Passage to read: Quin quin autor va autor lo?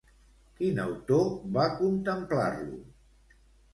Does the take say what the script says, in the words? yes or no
no